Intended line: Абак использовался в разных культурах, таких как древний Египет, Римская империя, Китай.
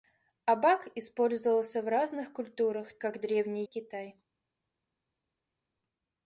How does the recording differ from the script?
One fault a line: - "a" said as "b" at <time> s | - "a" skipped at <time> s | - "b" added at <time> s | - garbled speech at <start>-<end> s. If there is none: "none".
- "таких" skipped at 3.0 s
- "Египет Римская империя" skipped at 3.6 s